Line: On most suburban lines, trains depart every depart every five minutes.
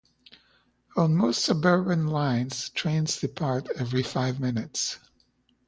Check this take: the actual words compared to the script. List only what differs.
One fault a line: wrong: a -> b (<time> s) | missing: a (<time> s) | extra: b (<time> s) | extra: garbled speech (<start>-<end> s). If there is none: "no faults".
missing: depart every (4.0 s)